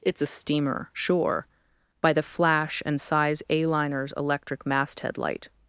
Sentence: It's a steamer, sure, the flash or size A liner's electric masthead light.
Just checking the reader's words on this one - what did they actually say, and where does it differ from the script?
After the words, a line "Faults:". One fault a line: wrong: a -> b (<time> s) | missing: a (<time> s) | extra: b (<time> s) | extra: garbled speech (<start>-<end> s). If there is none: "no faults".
It's a steamer, sure, by the flash and size A liner's electric masthead light.
Faults:
extra: by (2.0 s)
wrong: or -> and (2.9 s)